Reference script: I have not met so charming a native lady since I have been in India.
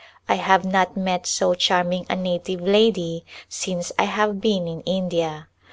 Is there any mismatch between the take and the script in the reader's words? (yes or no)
no